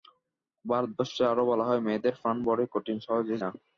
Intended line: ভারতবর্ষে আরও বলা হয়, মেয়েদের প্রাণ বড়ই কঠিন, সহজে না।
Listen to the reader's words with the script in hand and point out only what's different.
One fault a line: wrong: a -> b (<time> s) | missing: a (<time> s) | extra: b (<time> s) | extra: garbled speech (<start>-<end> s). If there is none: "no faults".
no faults